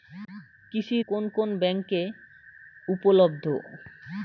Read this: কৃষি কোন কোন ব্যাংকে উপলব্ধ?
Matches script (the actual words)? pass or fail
pass